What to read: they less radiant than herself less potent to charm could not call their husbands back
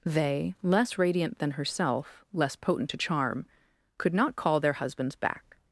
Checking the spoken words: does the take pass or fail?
pass